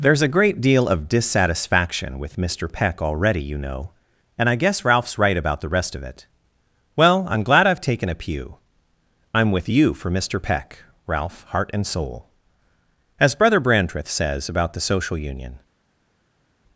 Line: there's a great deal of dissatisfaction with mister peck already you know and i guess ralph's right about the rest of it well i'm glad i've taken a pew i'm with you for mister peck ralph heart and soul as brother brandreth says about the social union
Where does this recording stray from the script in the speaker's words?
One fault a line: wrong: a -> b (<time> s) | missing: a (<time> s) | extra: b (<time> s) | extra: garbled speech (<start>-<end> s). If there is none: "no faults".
no faults